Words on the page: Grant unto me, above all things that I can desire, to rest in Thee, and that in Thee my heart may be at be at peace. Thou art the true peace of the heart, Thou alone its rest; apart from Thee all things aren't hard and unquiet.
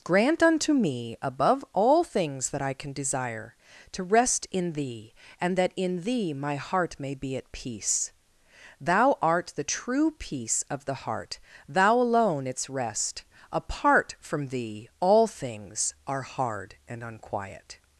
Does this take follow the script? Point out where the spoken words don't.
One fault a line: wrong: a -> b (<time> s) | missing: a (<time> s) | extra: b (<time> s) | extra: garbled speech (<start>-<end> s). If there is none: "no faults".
missing: be at (7.5 s)
wrong: aren't -> are (16.1 s)